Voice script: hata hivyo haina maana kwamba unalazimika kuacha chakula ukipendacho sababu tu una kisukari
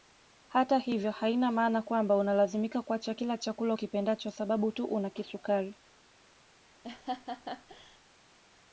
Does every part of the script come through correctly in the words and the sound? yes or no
no